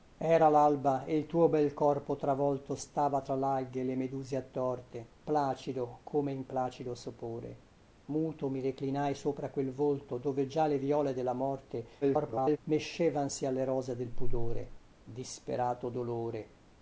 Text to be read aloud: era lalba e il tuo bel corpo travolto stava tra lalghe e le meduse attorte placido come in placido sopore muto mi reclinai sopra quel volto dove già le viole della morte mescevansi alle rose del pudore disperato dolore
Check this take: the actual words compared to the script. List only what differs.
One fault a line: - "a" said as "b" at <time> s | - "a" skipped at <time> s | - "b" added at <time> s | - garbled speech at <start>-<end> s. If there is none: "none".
- garbled speech at 12.0-12.6 s